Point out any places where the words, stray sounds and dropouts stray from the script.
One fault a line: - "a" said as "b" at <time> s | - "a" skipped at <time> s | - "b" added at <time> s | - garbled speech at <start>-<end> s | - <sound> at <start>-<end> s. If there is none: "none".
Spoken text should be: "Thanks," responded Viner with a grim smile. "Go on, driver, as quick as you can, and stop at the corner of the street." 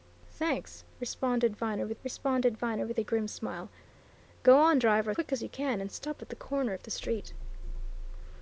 - "responded Viner with" added at 2.0 s
- "as" skipped at 5.1 s